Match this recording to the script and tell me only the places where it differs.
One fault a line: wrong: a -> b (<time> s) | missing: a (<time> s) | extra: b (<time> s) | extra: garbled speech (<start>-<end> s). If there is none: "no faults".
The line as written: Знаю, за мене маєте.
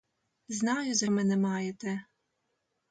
no faults